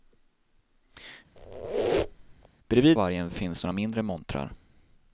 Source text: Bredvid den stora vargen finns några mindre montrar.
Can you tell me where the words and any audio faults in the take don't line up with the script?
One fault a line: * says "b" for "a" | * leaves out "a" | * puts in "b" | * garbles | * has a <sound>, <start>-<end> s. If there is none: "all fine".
* has a squeak, 1.4-2.5 s
* leaves out "den stora"